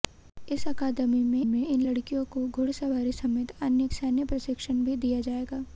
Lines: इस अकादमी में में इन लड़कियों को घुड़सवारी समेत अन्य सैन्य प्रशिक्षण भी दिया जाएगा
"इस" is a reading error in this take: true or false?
false